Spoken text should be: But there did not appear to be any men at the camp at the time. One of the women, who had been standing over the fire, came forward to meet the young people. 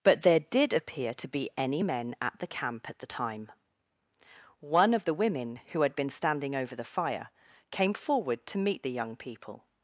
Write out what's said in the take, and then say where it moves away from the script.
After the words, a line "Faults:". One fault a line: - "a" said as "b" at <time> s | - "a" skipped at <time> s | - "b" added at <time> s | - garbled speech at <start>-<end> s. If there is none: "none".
But there did appear to be any men at the camp at the time. One of the women, who had been standing over the fire, came forward to meet the young people.
Faults:
- "not" skipped at 0.7 s